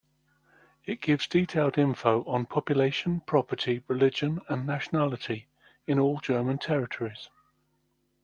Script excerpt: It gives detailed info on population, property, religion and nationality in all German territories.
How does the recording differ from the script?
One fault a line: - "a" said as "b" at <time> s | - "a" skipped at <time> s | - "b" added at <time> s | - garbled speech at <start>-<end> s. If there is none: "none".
none